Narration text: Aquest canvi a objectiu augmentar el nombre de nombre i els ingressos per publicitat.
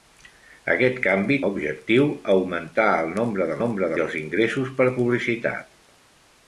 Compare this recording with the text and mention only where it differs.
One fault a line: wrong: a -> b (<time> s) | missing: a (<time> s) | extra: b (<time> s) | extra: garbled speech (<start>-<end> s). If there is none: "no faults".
no faults